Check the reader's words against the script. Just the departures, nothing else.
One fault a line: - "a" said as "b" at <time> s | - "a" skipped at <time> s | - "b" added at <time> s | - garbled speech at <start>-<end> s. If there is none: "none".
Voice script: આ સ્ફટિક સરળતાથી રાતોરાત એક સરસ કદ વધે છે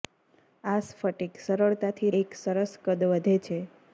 - "રાતોરાત" skipped at 2.1 s